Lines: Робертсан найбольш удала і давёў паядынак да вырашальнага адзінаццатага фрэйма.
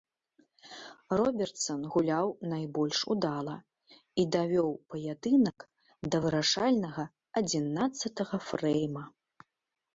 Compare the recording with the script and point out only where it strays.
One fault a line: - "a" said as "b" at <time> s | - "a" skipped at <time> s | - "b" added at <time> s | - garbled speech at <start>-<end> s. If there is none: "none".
- "гуляў" added at 1.9 s